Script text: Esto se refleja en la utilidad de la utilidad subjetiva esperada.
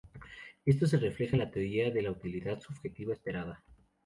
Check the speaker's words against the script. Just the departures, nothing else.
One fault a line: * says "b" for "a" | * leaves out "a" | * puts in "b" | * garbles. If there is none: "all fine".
* says "teoría" for "utilidad"